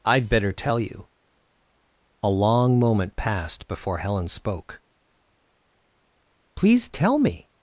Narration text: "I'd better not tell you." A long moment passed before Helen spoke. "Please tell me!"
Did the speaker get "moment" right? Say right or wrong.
right